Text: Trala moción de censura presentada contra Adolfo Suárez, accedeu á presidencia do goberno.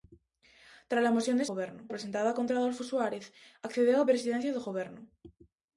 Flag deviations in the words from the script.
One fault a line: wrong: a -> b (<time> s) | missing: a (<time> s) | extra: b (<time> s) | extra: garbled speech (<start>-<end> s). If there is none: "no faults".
wrong: censura -> goberno (1.5 s)